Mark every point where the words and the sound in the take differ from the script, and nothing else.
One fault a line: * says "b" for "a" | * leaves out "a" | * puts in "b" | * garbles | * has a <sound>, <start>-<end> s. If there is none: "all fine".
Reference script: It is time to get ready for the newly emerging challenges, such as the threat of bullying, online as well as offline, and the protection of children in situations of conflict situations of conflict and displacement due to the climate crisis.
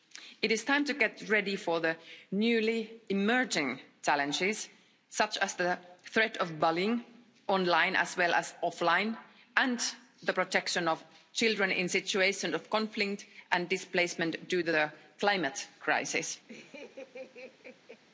* leaves out "situations of conflict"
* has a laugh, 16.5-18.0 s